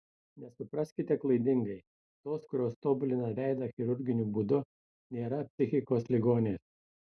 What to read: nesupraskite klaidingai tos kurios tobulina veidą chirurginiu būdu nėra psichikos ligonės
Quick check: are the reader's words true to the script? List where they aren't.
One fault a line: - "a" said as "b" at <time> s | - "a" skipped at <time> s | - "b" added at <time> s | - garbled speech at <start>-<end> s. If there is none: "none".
none